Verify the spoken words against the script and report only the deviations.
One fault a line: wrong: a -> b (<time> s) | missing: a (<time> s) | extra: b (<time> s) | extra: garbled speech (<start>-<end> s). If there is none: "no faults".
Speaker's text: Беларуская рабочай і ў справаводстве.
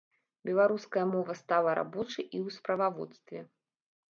extra: мова стала (1.1 s)